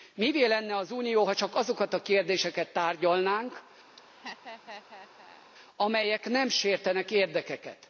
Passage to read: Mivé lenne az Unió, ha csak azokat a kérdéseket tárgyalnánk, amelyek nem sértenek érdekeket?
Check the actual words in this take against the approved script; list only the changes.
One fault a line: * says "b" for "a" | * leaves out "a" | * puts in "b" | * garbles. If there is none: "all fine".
all fine